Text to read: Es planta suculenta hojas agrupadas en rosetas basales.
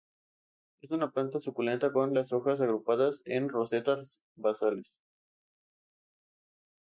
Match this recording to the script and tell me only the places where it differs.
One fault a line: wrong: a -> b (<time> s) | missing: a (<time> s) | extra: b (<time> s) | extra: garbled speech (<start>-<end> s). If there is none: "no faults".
extra: una (0.9 s)
extra: con las (1.9 s)